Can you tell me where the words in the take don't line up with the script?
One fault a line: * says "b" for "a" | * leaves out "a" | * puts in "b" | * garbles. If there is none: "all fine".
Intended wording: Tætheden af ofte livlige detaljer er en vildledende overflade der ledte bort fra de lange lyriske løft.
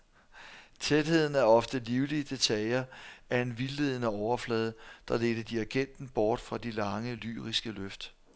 * puts in "dirigenten"